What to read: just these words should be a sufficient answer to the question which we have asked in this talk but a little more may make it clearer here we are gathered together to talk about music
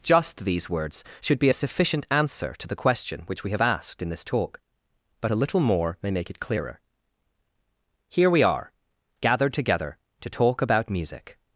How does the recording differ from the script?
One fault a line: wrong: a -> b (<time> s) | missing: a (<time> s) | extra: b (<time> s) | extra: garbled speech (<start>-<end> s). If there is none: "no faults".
no faults